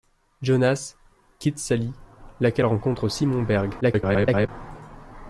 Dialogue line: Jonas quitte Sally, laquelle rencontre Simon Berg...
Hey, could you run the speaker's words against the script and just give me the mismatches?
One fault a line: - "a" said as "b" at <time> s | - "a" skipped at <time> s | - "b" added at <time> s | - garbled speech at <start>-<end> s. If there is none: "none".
- garbled speech at 3.8-4.5 s